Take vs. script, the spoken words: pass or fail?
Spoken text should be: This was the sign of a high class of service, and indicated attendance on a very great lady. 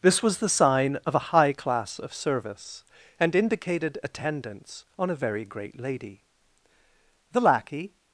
fail